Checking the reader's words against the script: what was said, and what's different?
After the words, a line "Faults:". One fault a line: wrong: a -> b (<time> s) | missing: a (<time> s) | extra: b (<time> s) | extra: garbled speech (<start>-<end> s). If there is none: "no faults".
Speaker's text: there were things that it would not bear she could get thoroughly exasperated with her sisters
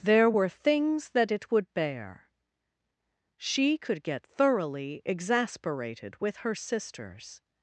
there were things that it would bear she could get thoroughly exasperated with her sisters
Faults:
missing: not (1.7 s)